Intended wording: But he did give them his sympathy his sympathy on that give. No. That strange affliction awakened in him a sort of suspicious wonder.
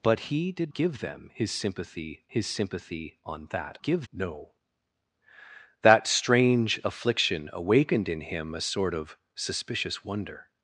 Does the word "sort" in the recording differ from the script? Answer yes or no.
no